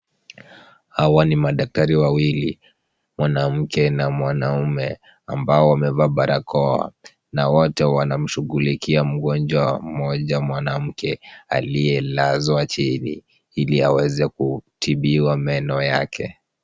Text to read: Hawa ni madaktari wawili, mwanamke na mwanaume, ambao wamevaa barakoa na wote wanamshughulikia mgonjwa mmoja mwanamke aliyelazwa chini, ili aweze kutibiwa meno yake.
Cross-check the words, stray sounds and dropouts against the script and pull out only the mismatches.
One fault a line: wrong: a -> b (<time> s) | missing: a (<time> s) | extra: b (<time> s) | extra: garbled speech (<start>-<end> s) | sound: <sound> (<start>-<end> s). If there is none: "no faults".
no faults